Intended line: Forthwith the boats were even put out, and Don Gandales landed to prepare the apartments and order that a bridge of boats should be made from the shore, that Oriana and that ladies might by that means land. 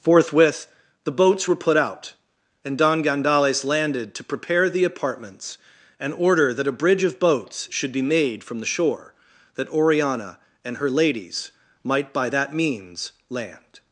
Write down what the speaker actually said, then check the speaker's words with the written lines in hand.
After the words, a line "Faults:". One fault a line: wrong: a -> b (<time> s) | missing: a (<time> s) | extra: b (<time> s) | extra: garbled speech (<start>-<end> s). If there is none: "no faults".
Forthwith the boats were put out, and Don Gandales landed to prepare the apartments and order that a bridge of boats should be made from the shore, that Oriana and her ladies might by that means land.
Faults:
missing: even (1.6 s)
wrong: that -> her (10.8 s)